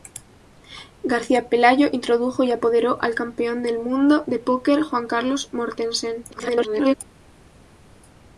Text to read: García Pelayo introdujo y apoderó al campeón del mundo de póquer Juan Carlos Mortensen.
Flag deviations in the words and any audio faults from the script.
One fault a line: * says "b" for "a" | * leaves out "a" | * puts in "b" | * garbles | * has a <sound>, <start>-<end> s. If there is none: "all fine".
* garbles